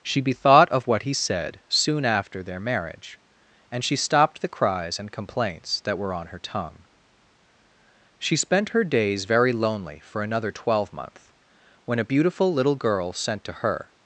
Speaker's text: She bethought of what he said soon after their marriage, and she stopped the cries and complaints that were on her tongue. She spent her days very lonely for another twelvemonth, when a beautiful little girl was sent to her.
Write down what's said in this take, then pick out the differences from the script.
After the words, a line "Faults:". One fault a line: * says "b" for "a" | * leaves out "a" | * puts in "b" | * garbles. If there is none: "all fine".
She bethought of what he said soon after their marriage, and she stopped the cries and complaints that were on her tongue. She spent her days very lonely for another twelvemonth, when a beautiful little girl sent to her.
Faults:
* leaves out "was"